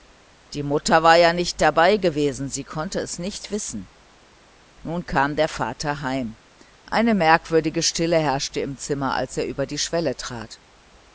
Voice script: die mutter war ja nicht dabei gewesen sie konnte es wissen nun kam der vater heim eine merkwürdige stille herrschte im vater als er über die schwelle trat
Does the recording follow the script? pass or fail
fail